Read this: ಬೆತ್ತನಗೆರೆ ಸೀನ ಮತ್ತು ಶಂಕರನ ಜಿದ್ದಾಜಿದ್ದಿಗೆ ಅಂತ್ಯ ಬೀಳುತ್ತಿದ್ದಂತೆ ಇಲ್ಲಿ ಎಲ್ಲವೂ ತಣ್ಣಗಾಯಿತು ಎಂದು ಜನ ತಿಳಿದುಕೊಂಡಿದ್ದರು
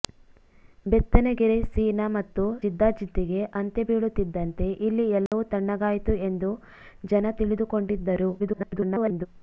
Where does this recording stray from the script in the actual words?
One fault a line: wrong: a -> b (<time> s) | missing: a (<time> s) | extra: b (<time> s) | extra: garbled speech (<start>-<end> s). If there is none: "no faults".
missing: ಶಂಕರನ (2.4 s)
extra: garbled speech (8.4-9.3 s)